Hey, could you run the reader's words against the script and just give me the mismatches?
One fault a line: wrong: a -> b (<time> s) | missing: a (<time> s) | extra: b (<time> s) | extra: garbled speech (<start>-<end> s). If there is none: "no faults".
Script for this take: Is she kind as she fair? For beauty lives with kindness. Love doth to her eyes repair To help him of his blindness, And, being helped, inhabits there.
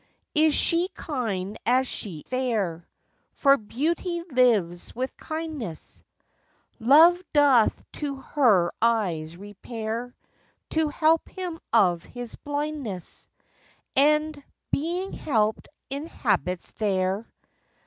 no faults